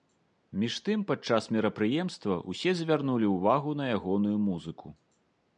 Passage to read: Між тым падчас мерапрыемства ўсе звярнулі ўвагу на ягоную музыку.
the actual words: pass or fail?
pass